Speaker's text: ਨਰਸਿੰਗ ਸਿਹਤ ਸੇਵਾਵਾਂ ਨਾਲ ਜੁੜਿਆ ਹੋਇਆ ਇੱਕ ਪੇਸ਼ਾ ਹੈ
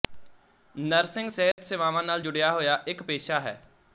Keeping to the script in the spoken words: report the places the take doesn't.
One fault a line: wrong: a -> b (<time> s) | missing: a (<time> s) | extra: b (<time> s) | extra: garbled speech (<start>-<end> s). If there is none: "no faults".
no faults